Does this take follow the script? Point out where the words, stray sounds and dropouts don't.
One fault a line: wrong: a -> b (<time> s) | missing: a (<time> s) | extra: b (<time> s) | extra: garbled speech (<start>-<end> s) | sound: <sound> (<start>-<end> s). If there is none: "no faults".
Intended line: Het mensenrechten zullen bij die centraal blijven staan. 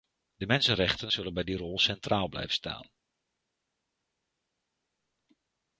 wrong: Het -> De (0.3 s)
extra: rol (1.6 s)